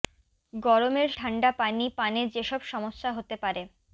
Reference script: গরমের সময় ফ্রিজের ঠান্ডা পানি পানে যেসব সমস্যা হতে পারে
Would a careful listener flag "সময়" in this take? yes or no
yes